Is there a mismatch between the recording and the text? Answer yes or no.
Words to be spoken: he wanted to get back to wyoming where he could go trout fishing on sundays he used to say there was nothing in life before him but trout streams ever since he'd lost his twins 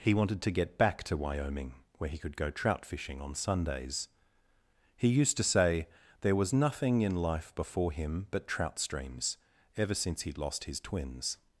no